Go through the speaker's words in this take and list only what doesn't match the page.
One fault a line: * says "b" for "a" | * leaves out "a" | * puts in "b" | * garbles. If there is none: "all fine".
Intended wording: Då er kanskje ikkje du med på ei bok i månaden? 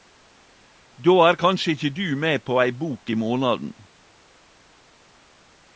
all fine